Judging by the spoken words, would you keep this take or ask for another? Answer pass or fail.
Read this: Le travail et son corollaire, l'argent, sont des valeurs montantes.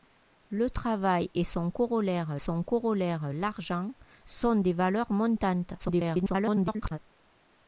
fail